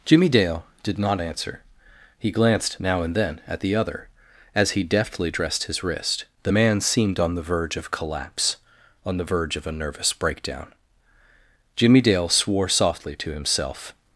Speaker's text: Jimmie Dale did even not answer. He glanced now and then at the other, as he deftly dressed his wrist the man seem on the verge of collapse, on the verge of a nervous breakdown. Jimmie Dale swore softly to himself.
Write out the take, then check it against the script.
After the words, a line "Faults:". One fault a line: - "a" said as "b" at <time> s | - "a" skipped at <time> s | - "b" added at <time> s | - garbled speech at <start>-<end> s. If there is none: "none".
Jimmie Dale did not answer. He glanced now and then at the other, as he deftly dressed his wrist the man seemed on the verge of collapse, on the verge of a nervous breakdown. Jimmie Dale swore softly to himself.
Faults:
- "even" skipped at 1.0 s
- "seem" said as "seemed" at 6.8 s